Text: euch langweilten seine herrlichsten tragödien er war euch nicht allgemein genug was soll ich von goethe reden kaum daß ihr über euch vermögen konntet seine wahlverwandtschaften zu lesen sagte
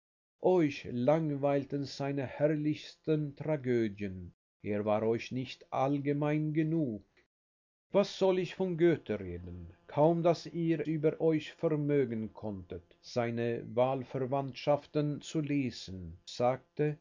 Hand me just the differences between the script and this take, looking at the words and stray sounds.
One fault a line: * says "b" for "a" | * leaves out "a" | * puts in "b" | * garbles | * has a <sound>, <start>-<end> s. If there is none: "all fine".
all fine